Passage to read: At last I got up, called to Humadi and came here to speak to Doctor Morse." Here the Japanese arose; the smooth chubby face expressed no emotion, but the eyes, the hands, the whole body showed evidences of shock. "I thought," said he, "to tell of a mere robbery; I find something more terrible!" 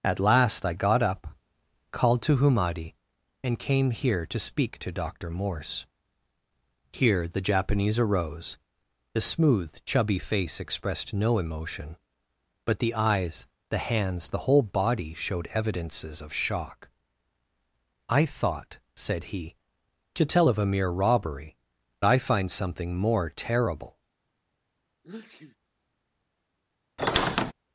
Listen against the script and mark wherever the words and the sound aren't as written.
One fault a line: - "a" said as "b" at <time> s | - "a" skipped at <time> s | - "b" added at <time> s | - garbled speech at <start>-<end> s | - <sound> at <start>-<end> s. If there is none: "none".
- sneeze at 25.0-25.6 s
- squeak at 27.0-27.5 s